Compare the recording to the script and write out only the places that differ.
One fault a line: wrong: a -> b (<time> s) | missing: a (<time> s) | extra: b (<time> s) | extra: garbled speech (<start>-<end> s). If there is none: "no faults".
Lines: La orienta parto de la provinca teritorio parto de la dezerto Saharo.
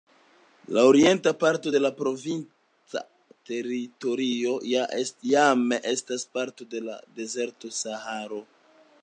extra: jam estas (4.8 s)